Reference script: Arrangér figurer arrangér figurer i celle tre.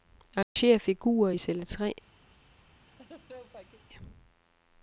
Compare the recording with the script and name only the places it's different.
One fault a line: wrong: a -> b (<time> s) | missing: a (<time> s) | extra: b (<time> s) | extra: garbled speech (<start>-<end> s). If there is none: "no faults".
missing: arrangér figurer (1.3 s)